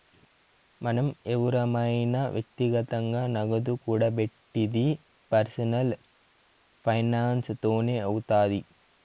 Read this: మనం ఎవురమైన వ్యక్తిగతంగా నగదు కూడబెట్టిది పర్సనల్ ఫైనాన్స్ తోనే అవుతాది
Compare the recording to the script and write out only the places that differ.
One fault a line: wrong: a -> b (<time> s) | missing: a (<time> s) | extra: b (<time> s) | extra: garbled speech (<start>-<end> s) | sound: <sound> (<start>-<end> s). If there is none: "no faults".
no faults